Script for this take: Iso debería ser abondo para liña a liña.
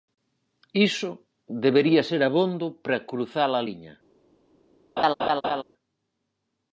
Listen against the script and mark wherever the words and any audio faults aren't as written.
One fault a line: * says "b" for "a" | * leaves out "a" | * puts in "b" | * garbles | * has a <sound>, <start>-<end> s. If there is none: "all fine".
* says "cruzar" for "liña"
* has a laugh, 5.0-5.6 s